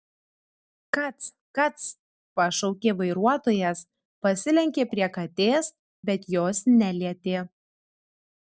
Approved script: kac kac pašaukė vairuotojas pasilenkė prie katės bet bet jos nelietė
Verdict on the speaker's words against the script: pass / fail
fail